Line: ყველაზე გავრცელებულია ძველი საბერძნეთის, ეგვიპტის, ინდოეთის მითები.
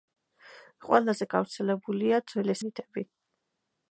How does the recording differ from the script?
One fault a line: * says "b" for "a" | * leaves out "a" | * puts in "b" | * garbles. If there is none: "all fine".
* leaves out "საბერძნეთის ეგვიპტის ინდოეთის"